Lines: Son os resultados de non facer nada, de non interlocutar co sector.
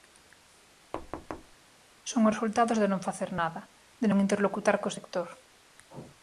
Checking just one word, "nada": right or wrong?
right